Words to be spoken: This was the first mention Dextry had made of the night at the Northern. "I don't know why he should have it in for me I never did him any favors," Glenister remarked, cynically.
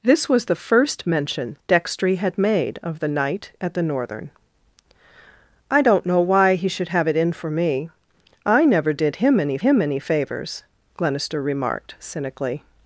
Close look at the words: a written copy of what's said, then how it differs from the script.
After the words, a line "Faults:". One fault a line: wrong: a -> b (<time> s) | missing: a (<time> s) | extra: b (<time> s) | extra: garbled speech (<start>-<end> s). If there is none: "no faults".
This was the first mention Dextry had made of the night at the Northern. "I don't know why he should have it in for me I never did him any him any favors," Glenister remarked, cynically.
Faults:
extra: him any (9.6 s)